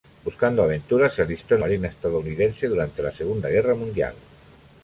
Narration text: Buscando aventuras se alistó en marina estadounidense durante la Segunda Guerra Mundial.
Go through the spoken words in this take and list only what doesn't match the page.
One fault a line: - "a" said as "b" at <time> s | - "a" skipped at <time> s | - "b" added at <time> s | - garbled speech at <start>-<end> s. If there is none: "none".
none